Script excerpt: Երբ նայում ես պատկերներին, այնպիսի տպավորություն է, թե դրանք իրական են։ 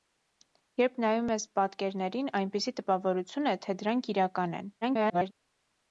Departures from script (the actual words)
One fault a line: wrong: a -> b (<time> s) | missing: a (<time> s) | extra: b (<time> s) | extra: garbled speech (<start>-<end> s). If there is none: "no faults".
extra: garbled speech (4.8-5.3 s)